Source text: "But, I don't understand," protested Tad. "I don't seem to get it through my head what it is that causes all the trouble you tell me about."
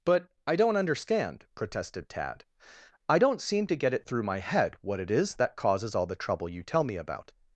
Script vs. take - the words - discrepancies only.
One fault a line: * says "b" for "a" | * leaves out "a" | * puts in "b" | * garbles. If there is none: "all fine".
all fine